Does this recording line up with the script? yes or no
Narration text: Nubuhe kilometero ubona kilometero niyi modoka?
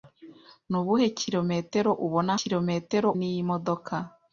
yes